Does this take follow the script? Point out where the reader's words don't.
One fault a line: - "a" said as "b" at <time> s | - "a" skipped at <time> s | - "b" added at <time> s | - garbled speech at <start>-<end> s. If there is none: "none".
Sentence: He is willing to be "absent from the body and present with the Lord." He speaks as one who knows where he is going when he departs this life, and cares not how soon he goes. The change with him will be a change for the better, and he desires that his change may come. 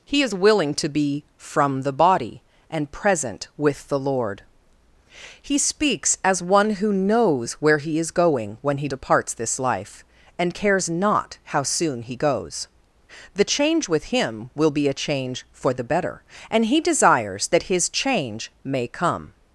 - "absent" skipped at 1.2 s